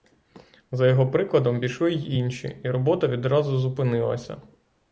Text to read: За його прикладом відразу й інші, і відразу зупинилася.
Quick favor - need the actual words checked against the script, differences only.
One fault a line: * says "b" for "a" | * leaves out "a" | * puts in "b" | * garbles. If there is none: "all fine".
* says "пішли" for "відразу"
* puts in "робота"